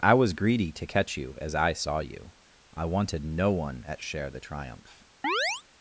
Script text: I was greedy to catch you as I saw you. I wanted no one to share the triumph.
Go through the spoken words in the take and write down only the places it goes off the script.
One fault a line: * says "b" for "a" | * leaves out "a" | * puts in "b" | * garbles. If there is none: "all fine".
* says "at" for "to"